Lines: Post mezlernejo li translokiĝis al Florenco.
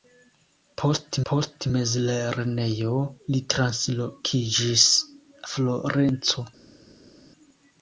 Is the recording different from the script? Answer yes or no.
yes